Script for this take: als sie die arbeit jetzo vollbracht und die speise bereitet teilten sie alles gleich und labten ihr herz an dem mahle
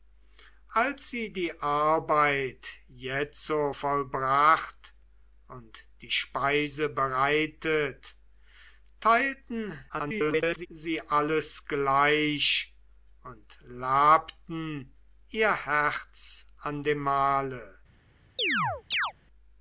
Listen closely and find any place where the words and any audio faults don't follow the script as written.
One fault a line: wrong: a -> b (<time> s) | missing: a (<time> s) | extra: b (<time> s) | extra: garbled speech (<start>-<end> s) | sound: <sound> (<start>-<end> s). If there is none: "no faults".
extra: garbled speech (9.9-10.7 s)
sound: chirp (18.4-19.1 s)